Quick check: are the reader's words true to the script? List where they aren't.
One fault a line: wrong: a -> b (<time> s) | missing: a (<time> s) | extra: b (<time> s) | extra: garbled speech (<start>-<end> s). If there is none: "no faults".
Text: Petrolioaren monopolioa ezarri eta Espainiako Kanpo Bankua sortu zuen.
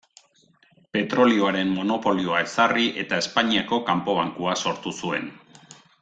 no faults